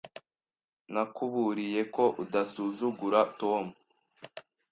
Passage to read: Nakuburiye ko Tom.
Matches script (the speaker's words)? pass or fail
fail